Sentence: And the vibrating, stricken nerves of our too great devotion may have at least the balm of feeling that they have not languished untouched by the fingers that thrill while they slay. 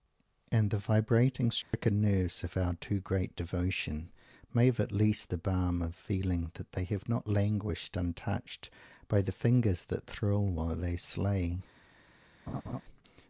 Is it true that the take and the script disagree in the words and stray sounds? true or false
true